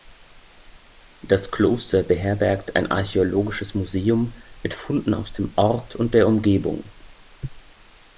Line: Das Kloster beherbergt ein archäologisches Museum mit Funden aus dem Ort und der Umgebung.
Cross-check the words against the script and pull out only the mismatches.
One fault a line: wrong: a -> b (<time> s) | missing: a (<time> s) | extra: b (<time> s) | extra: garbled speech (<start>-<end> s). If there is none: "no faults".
no faults